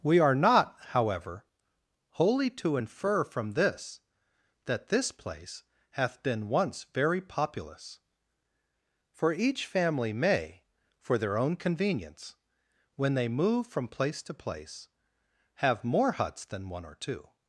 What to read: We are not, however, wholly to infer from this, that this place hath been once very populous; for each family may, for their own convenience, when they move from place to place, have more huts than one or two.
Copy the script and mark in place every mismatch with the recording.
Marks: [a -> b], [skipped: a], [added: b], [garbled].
We are not, however, wholly to infer from this, that this place hath been once very populous; for each family may, for their own convenience, when they move from place to place, have more huts than one or two.